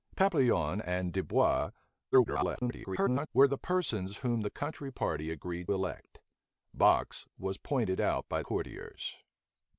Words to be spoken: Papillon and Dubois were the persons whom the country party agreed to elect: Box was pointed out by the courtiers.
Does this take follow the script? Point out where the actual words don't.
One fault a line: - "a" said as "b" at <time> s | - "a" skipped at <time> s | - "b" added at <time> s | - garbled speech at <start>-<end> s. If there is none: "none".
- garbled speech at 2.1-3.3 s
- "to" skipped at 5.7 s
- "the" skipped at 8.4 s